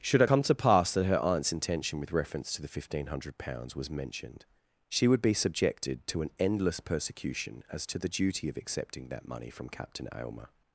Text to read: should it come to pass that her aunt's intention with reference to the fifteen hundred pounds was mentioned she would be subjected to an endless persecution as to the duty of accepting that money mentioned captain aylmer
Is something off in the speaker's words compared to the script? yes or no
yes